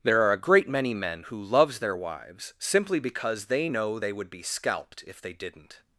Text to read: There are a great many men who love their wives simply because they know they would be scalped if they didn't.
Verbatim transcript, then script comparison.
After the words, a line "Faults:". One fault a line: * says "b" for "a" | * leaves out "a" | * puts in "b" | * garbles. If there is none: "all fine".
There are a great many men who loves their wives simply because they know they would be scalped if they didn't.
Faults:
* says "loves" for "love"